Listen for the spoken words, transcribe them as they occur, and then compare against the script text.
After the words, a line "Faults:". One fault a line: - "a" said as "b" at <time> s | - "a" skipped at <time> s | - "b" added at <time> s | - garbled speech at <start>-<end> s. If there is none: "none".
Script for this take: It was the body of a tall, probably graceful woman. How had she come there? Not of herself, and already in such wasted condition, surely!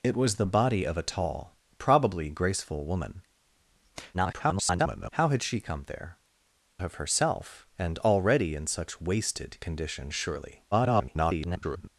It was the body of a tall, probably graceful woman. [garbled] How had she come there? Of herself, and already in such wasted condition, surely! [garbled]
Faults:
- garbled speech at 4.1-5.1 s
- "Not" skipped at 6.2 s
- garbled speech at 10.7-11.9 s